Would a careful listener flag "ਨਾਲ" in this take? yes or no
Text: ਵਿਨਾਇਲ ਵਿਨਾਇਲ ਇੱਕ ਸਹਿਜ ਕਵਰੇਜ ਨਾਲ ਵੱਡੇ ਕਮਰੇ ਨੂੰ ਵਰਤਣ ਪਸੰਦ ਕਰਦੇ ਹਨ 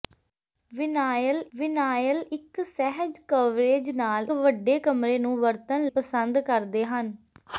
no